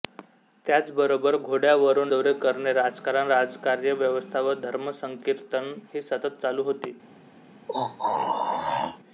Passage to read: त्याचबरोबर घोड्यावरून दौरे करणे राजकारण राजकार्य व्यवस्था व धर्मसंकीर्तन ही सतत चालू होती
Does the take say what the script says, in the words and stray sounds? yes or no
no